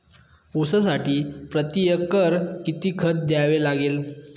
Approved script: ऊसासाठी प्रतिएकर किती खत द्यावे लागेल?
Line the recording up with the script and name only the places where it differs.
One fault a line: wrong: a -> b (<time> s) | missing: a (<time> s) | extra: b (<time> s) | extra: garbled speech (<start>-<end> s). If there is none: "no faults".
no faults